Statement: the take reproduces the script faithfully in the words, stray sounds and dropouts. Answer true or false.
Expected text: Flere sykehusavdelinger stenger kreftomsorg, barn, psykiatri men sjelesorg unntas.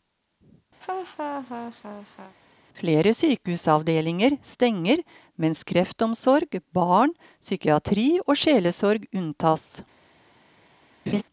false